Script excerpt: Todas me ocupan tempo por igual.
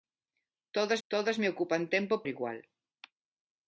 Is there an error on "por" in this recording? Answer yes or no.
yes